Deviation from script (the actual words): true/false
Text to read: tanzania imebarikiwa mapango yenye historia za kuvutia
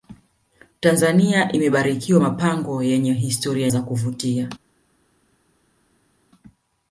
false